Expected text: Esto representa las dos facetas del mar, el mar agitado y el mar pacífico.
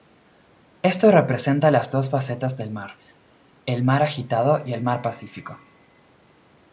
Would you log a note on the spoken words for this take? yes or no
no